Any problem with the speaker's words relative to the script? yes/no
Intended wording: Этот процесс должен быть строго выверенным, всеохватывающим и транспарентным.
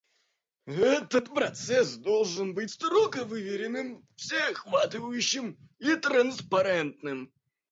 no